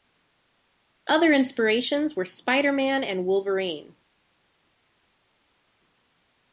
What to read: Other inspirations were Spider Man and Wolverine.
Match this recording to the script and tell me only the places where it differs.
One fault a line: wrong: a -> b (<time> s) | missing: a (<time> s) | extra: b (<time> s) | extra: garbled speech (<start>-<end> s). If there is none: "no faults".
no faults